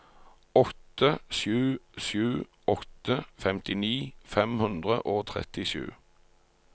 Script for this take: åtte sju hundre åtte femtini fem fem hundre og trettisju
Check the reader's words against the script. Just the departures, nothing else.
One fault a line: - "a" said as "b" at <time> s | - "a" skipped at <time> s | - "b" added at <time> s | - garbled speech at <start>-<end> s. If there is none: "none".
- "hundre" said as "sju" at 2.0 s
- "fem" skipped at 4.6 s